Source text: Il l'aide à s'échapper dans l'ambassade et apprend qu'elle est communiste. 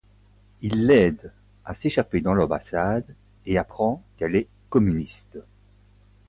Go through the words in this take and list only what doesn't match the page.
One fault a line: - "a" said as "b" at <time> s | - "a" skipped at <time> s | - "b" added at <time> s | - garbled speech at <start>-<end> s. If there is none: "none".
none